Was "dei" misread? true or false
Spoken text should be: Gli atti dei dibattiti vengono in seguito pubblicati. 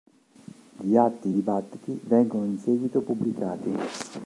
true